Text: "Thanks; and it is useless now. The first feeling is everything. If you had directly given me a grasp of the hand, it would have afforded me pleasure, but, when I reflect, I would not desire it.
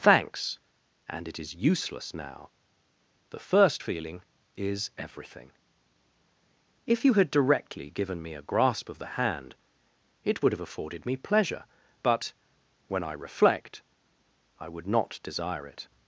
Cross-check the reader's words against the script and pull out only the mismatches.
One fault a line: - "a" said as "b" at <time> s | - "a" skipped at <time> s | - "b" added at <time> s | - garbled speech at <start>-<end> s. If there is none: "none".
none